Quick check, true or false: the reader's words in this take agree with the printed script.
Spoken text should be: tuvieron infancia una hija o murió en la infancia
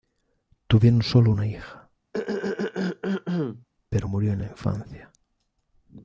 false